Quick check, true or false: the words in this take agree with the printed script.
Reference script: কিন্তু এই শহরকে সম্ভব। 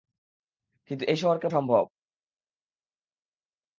true